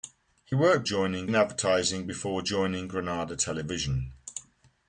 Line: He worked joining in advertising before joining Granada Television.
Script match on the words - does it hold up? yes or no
yes